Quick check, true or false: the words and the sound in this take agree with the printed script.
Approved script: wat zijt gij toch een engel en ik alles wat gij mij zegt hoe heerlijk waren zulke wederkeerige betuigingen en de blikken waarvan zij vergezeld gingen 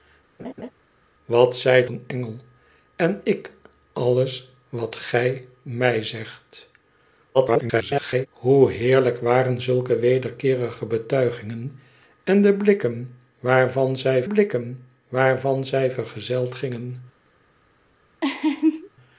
false